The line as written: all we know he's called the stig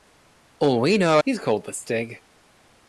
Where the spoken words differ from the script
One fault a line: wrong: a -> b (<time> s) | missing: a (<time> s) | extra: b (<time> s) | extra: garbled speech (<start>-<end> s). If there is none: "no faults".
no faults